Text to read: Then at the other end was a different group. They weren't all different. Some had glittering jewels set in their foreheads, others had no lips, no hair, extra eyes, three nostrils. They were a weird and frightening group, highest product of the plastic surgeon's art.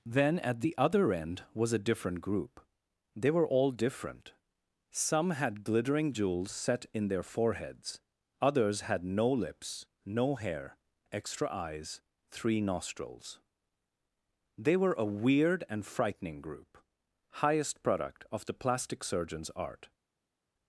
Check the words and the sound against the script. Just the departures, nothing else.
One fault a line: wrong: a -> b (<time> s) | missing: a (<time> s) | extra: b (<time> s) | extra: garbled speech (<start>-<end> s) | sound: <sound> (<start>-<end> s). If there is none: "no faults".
wrong: weren't -> were (3.3 s)